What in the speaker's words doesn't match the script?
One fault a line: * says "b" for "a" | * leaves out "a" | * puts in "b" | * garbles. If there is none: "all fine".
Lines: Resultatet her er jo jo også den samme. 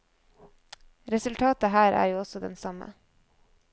* leaves out "jo"